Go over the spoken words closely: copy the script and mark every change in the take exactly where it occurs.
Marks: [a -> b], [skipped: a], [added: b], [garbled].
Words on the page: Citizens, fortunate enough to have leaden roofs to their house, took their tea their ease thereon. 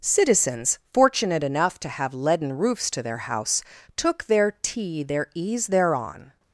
Citizens, fortunate enough to have leaden roofs to their house, took their tea their ease thereon.